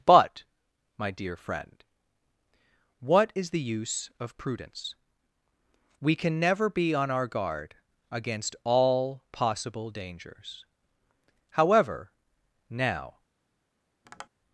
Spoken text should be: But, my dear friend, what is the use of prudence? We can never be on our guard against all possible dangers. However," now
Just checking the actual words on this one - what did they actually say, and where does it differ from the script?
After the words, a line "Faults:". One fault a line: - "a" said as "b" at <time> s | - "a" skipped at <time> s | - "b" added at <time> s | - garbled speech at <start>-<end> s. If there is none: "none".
But, my dear friend, what is the use of prudence? We can never be on our guard against all possible dangers. However," now
Faults:
none